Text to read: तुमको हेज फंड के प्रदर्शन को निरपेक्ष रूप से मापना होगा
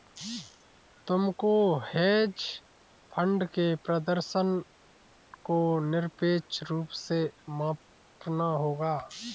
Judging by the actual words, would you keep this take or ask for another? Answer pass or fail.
pass